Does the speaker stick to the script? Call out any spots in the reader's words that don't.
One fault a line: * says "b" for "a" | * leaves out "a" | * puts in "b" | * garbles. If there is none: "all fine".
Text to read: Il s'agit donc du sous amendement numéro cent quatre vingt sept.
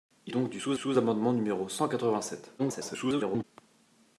* leaves out "s'agit"
* puts in "sous"
* garbles